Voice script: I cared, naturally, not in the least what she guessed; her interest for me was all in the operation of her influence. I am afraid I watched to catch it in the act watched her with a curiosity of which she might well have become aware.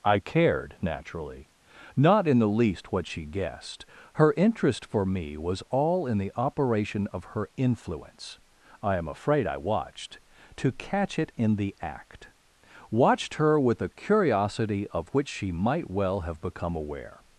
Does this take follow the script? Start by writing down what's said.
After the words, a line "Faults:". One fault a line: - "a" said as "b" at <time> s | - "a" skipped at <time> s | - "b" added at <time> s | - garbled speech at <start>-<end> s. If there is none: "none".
I cared, naturally, not in the least what she guessed; her interest for me was all in the operation of her influence. I am afraid I watched to catch it in the act watched her with a curiosity of which she might well have become aware.
Faults:
none